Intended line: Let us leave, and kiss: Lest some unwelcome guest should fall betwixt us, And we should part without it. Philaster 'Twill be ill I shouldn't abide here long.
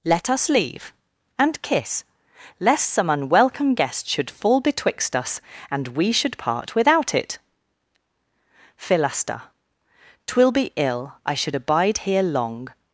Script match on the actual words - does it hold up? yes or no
no